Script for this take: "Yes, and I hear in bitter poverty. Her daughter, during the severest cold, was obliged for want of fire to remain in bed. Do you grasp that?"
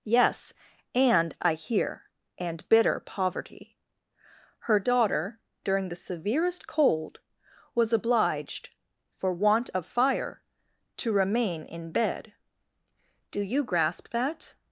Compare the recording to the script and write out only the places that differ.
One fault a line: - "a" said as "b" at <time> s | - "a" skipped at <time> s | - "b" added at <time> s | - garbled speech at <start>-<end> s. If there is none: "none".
- "in" said as "and" at 2.4 s